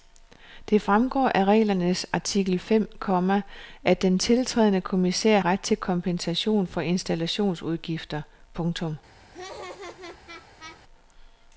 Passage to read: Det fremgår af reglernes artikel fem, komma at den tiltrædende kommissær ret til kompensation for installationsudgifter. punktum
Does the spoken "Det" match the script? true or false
true